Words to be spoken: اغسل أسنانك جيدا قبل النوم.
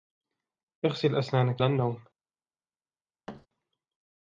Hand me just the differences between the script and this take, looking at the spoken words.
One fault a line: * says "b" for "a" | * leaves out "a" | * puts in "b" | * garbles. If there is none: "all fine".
* leaves out "جيدا قبل"